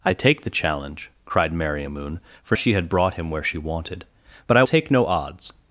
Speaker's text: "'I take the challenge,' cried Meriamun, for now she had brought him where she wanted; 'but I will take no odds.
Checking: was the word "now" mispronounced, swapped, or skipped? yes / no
yes